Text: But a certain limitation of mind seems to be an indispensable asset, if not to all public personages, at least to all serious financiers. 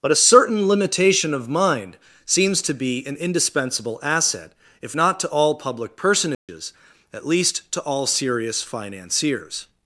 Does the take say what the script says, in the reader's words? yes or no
yes